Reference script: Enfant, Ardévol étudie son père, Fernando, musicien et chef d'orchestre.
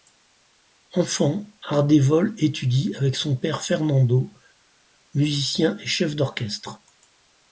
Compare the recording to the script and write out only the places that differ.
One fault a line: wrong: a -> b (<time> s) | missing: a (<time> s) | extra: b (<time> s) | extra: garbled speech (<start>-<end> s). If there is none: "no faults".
extra: avec (3.0 s)